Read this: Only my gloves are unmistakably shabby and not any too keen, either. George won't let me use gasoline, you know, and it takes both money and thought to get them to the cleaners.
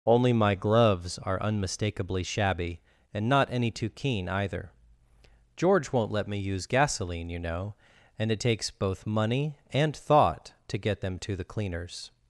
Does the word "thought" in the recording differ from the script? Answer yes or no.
no